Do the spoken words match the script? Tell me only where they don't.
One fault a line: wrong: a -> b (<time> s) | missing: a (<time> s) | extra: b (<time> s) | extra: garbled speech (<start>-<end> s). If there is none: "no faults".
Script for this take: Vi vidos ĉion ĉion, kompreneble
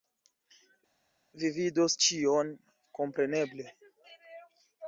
missing: ĉion (2.6 s)